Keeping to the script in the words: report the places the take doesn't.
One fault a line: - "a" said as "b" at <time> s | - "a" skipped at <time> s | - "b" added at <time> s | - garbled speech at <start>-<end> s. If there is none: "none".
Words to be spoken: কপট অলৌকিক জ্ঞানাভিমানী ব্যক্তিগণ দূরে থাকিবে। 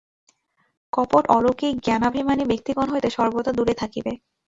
- "হইতে সর্বদা" added at 2.9 s